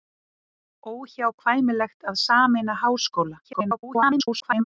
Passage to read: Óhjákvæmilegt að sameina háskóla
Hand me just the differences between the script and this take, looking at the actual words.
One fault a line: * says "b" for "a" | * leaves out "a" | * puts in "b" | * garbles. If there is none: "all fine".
* garbles